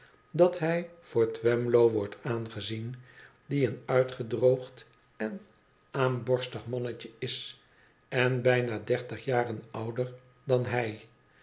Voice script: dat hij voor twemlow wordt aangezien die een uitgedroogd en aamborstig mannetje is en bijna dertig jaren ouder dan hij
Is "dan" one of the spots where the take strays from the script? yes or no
no